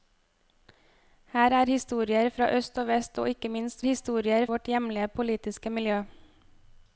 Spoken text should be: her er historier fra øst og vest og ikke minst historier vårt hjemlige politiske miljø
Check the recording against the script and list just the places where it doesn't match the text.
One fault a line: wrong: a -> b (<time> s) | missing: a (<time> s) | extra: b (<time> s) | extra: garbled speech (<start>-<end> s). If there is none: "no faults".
no faults